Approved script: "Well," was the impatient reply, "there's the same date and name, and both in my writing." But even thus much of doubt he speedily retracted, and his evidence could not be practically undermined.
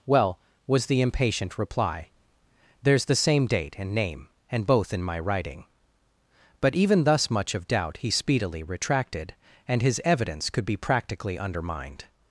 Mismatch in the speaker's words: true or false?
true